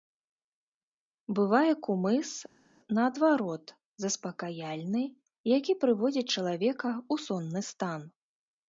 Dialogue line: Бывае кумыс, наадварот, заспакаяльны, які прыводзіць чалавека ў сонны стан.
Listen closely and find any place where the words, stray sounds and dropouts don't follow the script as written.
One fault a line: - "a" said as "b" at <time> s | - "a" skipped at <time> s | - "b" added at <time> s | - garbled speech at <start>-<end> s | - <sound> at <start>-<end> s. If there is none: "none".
none